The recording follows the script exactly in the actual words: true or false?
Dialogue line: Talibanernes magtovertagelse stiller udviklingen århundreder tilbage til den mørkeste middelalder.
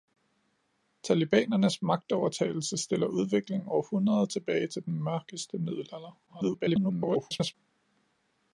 false